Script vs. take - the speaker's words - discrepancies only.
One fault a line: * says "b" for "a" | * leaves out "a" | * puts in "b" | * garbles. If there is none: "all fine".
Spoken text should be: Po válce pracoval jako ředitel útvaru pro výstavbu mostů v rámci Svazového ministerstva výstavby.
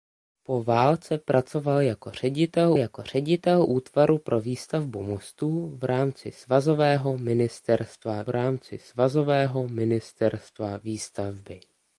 * puts in "jako ředitel"
* puts in "rámci Svazového ministerstva"